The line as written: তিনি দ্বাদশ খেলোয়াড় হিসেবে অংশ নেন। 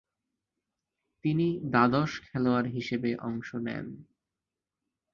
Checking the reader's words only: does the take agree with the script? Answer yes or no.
yes